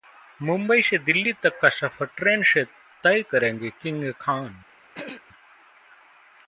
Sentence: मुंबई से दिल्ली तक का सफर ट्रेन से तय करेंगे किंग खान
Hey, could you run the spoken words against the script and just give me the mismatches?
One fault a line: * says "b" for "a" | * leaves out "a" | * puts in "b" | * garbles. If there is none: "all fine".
all fine